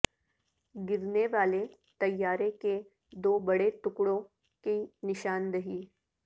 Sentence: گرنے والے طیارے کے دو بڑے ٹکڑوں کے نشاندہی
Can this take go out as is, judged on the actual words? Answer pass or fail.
fail